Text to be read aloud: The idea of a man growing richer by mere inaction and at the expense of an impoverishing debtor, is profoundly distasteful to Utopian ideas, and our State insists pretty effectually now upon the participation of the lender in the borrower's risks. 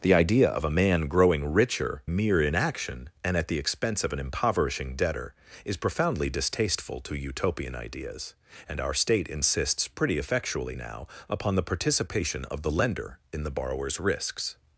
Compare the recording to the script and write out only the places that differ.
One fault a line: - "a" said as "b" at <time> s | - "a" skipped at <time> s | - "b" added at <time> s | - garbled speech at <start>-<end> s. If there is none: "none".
- "by" skipped at 2.0 s